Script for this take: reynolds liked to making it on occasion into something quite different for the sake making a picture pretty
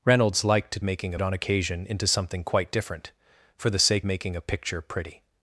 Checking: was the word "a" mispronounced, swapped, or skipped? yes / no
no